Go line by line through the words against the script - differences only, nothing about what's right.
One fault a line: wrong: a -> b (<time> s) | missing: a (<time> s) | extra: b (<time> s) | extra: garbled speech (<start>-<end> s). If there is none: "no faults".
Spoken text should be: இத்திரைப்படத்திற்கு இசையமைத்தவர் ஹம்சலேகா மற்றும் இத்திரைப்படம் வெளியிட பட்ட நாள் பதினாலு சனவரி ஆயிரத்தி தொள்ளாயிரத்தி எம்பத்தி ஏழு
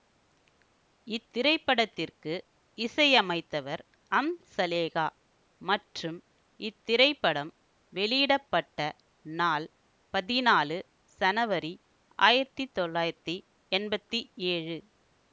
no faults